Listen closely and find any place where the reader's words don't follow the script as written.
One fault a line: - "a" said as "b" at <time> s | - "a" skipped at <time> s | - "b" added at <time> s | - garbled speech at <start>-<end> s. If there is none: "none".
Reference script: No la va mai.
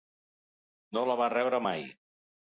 - "rebre" added at 1.4 s